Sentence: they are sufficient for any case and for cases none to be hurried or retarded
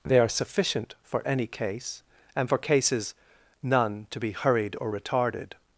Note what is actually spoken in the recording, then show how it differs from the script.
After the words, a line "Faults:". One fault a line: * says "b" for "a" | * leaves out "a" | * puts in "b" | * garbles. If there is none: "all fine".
they are sufficient for any case and for cases none to be hurried or retarded
Faults:
all fine